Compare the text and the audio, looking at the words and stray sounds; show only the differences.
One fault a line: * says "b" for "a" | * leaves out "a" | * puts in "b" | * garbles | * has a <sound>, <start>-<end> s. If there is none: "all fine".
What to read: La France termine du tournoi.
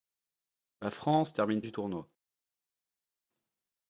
all fine